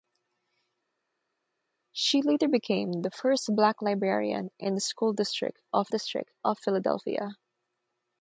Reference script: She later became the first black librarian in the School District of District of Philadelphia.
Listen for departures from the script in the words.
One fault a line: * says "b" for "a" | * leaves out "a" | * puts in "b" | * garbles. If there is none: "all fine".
all fine